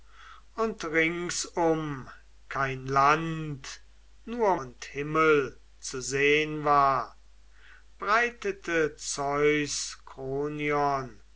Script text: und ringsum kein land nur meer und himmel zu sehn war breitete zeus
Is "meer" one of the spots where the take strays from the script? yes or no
yes